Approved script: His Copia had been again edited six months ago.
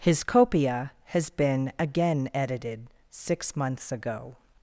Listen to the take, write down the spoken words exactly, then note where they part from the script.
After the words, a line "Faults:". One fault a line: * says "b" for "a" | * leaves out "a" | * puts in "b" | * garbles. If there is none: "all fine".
His Copia has been again edited six months ago.
Faults:
* says "has" for "had"